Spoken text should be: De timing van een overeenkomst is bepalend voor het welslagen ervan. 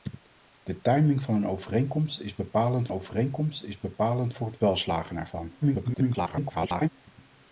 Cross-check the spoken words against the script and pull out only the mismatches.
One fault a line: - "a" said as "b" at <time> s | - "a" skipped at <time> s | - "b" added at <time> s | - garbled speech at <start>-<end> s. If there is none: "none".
- "overeenkomst is bepalend" added at 2.9 s
- garbled speech at 5.6-6.9 s